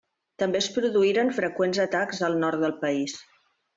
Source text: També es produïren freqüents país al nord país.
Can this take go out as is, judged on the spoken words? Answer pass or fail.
fail